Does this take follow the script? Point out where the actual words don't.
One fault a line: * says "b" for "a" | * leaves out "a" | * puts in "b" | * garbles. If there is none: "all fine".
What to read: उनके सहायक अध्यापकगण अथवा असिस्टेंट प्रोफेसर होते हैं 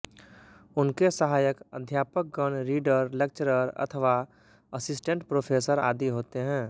* puts in "रीडर लेक्चरर"
* puts in "आदि"